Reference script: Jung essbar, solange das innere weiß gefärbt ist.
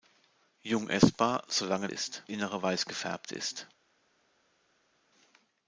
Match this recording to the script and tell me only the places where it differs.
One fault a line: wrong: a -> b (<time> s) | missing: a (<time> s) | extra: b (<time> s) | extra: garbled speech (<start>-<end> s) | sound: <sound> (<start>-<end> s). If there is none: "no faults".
wrong: das -> ist (1.9 s)